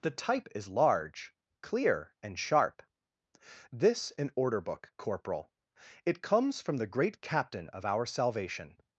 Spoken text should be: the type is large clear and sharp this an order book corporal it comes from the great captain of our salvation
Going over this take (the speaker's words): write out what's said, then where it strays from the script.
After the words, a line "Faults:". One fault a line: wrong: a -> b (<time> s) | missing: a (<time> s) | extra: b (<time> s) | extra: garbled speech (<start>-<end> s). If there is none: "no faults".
the type is large clear and sharp this an order book corporal it comes from the great captain of our salvation
Faults:
no faults